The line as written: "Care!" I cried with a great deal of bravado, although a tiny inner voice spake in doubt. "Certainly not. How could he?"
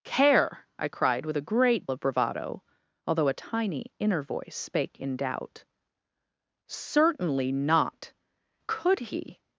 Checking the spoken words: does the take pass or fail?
fail